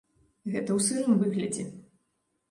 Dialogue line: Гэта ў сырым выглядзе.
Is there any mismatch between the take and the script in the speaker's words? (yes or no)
no